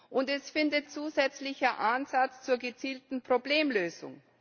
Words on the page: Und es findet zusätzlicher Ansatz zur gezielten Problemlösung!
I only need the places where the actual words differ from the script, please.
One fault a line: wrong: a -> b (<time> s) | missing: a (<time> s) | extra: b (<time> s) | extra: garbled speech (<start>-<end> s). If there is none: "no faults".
no faults